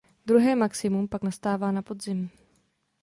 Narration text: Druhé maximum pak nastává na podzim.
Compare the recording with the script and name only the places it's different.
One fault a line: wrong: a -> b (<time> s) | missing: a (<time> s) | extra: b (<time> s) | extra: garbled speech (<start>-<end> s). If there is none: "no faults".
no faults